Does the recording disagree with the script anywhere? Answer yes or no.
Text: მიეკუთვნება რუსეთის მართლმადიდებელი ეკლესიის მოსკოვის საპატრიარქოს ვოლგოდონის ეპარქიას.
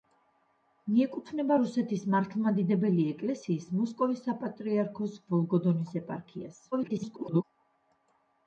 yes